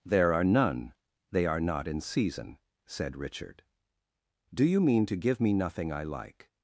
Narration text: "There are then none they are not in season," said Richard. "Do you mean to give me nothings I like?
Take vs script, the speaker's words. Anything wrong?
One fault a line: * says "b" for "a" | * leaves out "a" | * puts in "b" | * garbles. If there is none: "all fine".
* leaves out "then"
* says "nothing" for "nothings"